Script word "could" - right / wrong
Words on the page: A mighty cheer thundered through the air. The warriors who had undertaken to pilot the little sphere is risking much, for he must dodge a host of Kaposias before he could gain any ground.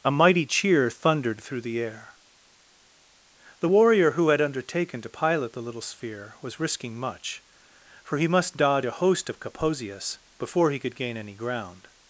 right